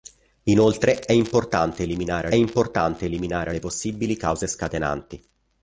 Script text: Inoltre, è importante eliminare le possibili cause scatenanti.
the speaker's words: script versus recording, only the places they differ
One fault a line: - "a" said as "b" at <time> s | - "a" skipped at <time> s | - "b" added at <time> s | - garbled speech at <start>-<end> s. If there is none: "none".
- "importante eliminare" added at 2.3 s